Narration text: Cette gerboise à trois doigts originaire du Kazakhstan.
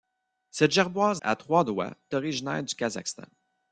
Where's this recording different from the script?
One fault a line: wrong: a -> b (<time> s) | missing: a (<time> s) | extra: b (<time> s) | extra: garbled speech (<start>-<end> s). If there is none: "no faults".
no faults